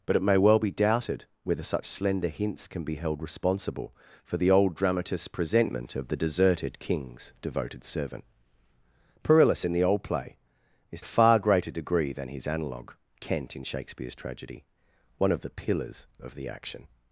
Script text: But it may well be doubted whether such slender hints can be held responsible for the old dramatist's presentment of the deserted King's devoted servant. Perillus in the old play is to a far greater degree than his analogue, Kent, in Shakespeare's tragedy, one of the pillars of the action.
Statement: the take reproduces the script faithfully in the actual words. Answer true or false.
false